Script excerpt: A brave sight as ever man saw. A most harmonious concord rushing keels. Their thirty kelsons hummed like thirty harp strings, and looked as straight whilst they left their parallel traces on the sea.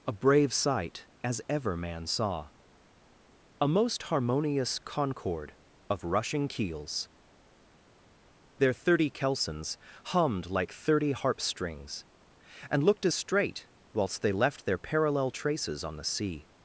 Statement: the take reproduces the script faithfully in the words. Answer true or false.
false